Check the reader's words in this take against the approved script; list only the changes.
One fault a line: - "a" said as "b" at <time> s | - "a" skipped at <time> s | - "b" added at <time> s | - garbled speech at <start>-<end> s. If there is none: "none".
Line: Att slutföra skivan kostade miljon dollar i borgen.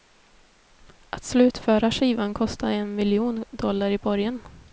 - "en" added at 2.7 s